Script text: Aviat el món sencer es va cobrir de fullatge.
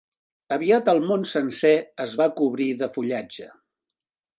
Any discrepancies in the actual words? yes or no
no